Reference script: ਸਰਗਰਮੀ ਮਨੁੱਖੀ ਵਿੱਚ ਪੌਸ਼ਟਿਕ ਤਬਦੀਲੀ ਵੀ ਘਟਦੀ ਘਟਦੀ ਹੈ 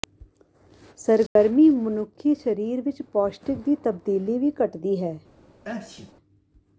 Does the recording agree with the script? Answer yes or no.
no